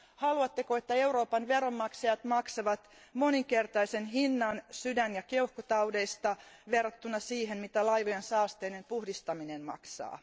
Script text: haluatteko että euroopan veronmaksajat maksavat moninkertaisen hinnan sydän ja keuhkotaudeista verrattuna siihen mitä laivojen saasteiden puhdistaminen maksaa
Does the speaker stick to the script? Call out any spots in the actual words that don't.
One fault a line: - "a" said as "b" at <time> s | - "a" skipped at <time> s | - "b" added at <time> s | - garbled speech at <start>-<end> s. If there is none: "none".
none